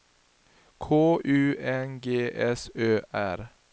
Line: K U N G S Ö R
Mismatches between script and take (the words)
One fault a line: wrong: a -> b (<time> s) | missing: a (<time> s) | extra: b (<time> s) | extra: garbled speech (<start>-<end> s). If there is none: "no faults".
no faults